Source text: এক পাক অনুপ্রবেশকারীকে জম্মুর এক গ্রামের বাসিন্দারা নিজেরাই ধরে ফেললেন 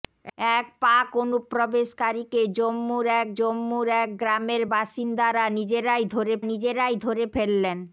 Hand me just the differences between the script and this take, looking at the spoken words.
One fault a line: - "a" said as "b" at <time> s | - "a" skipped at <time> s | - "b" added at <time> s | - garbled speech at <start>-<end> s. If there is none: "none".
- "জম্মুর এক" added at 3.4 s
- "নিজেরাই ধরে" added at 6.5 s